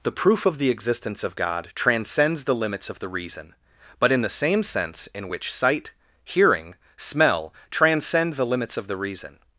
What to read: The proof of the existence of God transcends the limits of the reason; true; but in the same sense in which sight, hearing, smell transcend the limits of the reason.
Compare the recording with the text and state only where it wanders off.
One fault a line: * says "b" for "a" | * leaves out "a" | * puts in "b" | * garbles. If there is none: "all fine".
* leaves out "true"